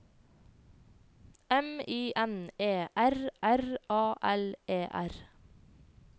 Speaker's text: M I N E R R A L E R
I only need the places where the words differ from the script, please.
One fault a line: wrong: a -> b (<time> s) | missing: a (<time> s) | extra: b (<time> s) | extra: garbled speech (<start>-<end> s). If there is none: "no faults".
no faults